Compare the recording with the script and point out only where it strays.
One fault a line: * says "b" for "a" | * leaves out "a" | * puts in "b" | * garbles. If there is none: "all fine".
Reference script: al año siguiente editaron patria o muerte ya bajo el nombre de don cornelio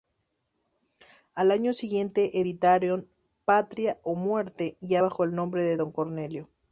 all fine